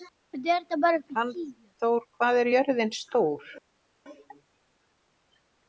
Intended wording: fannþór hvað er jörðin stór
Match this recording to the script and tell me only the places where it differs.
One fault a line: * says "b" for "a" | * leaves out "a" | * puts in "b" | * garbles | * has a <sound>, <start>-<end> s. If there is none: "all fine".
all fine